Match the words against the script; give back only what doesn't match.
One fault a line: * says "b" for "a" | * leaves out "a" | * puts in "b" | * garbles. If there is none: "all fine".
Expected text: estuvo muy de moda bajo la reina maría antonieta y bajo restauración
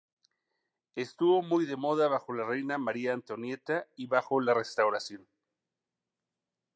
* puts in "la"